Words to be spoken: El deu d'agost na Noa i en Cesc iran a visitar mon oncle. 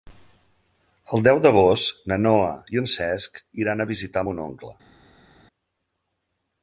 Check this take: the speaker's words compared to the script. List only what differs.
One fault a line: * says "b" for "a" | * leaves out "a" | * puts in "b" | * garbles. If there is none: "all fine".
all fine